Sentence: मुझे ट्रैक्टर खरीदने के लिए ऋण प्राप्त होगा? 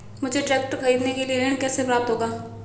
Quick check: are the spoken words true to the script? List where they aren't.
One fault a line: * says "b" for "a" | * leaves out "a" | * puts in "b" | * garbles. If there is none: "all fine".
* puts in "कैसे"